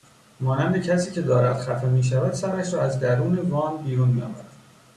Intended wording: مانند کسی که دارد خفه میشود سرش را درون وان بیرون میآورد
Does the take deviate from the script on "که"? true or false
false